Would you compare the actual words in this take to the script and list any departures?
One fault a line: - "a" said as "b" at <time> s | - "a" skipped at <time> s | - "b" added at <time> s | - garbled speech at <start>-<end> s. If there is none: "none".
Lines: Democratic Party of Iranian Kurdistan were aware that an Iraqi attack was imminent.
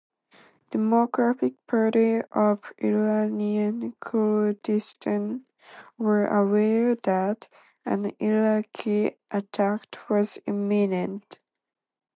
none